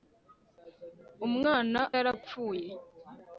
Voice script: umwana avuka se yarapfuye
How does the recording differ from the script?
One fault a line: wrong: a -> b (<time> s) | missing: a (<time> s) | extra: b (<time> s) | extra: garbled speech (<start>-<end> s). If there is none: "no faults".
missing: avuka se (1.8 s)